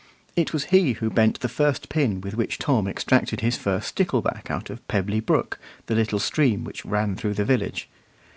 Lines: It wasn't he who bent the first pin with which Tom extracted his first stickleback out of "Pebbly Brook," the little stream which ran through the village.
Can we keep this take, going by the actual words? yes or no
no